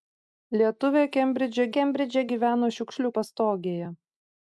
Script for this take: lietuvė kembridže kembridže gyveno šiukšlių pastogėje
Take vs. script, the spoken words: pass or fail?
pass